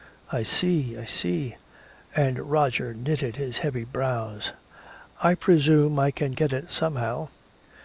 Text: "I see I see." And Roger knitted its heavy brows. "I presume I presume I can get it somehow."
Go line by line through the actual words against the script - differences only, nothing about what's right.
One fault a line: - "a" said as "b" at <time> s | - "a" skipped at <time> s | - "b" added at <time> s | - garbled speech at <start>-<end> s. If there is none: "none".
- "its" said as "his" at 3.4 s
- "presume I" skipped at 6.1 s